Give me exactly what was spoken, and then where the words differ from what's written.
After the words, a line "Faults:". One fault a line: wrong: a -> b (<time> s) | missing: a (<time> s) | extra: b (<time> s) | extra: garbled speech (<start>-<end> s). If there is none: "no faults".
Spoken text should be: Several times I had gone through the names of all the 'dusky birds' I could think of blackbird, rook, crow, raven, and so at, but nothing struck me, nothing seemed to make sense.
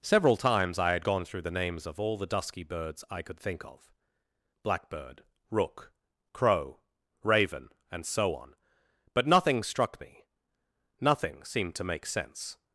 Several times I had gone through the names of all the 'dusky birds' I could think of blackbird, rook, crow, raven, and so on, but nothing struck me, nothing seemed to make sense.
Faults:
wrong: at -> on (8.4 s)